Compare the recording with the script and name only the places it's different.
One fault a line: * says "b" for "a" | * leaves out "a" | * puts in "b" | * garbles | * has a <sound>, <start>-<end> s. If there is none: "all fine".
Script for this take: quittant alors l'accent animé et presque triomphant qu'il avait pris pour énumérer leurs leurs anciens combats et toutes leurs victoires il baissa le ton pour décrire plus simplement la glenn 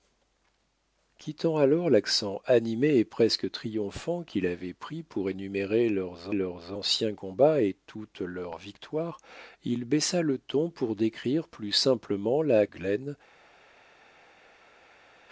all fine